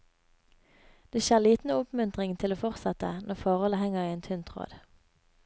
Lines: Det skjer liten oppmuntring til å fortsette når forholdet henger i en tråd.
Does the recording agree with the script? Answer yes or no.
no